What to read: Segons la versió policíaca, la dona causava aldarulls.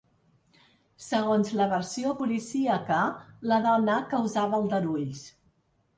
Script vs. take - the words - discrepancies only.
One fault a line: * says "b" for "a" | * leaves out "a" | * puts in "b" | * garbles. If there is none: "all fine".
all fine